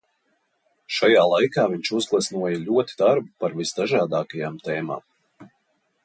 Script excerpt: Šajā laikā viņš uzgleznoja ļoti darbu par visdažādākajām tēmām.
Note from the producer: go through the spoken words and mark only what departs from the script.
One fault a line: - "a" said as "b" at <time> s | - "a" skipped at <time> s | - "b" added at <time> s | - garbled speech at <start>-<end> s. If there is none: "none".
none